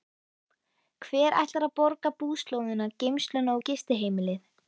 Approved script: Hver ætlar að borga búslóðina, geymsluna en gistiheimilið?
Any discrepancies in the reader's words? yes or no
yes